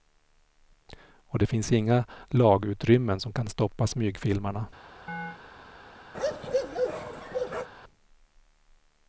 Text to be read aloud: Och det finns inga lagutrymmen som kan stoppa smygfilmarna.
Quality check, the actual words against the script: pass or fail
pass